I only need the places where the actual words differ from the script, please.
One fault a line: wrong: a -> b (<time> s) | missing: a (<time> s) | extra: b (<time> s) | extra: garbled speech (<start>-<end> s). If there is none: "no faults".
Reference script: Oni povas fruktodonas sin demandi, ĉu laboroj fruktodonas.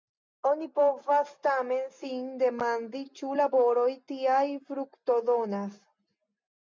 wrong: fruktodonas -> tamen (1.5 s)
extra: tiaj (4.1 s)